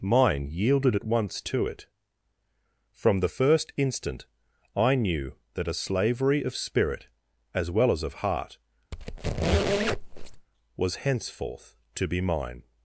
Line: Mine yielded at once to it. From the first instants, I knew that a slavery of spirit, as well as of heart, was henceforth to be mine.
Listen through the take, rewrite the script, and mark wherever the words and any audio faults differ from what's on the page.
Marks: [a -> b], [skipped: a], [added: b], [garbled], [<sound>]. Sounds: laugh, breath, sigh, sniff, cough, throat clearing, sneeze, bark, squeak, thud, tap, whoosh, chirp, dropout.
Mine yielded at once to it. From the first [instants, -> instant] I knew that a slavery of spirit, as well as of heart, [squeak] was henceforth to be mine.